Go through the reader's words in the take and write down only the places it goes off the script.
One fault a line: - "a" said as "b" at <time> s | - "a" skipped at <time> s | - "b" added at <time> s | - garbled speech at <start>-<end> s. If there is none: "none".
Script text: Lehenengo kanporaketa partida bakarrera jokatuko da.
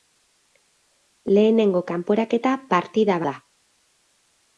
- "bakarrera jokatuko" skipped at 3.2 s